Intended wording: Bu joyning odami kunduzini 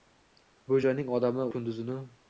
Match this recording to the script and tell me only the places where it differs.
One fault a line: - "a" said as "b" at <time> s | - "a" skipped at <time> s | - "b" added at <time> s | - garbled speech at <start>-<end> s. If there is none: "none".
none